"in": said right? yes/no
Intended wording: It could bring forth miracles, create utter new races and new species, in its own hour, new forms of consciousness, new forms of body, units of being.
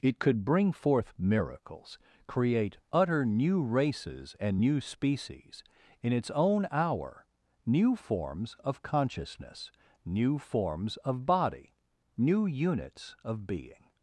yes